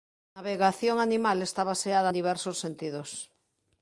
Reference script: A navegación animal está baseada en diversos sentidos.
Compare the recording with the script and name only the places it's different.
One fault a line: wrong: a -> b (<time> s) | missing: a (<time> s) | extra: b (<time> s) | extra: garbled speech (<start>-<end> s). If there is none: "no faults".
no faults